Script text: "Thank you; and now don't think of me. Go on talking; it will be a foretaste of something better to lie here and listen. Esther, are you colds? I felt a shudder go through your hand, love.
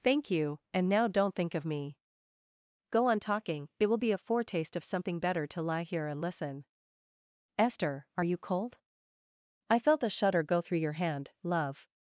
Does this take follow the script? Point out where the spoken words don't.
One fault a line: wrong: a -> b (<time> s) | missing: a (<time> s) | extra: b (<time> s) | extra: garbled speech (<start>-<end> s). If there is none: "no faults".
wrong: colds -> cold (8.4 s)